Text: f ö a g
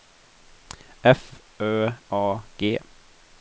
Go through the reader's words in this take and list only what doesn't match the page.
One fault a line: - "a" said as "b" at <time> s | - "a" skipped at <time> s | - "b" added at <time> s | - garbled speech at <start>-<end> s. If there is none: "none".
none